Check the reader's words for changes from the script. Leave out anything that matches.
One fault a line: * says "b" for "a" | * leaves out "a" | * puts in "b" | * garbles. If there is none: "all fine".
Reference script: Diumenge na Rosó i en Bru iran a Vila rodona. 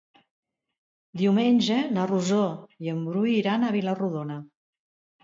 all fine